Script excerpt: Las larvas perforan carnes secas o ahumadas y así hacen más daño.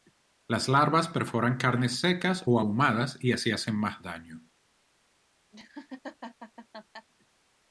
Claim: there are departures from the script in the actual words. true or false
false